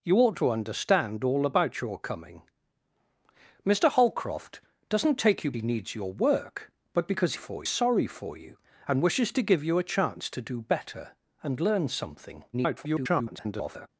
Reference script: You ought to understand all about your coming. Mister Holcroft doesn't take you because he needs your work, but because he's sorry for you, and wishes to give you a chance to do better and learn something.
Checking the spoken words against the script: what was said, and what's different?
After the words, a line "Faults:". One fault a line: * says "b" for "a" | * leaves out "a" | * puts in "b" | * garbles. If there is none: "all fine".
You ought to understand all about your coming. Mister Holcroft doesn't take you he needs your work, but because for sorry for you, and wishes to give you a chance to do better and learn something. [garbled]
Faults:
* leaves out "because"
* says "for" for "he's"
* garbles